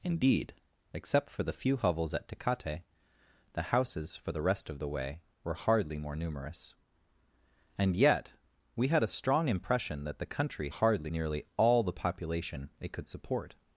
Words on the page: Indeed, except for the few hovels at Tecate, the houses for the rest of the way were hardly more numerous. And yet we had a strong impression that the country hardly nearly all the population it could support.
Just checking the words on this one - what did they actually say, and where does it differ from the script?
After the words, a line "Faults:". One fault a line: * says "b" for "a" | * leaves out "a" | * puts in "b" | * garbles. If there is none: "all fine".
Indeed, except for the few hovels at Tecate, the houses for the rest of the way were hardly more numerous. And yet we had a strong impression that the country hardly nearly all the population it could support.
Faults:
all fine